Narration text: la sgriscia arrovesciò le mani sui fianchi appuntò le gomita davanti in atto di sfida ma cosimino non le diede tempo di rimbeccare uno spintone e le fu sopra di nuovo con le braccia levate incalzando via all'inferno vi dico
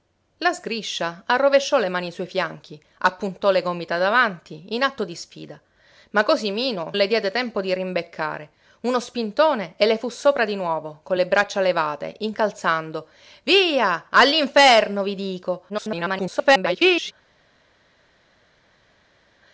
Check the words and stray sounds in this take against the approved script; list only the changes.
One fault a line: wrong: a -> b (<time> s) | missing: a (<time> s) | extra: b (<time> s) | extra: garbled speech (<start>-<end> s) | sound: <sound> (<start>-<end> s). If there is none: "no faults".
missing: non (6.9 s)
extra: garbled speech (15.7-17.1 s)